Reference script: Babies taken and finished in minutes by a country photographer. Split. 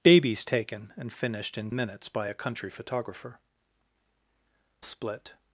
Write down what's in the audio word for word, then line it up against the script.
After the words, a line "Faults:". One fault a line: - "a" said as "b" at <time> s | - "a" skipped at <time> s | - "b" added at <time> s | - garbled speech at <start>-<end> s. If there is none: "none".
Babies taken and finished in minutes by a country photographer. Split.
Faults:
none